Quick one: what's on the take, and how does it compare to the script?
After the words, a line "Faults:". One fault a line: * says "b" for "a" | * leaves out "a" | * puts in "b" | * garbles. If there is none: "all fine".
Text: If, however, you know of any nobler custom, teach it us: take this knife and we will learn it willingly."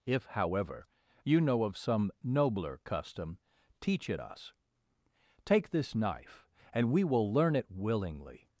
If, however, you know of some nobler custom, teach it us: take this knife and we will learn it willingly."
Faults:
* says "some" for "any"